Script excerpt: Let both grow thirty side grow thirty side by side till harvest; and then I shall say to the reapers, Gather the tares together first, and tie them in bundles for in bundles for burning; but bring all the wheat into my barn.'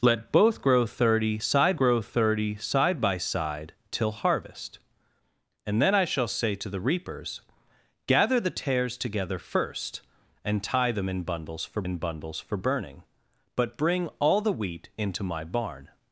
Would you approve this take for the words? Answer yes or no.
yes